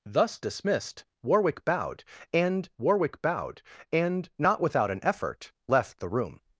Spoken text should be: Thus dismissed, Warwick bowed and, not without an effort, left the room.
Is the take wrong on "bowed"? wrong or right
right